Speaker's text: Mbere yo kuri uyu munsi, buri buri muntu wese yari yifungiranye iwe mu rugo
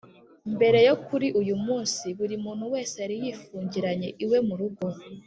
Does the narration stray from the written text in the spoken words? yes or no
yes